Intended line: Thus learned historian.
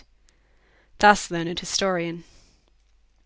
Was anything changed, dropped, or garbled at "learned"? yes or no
no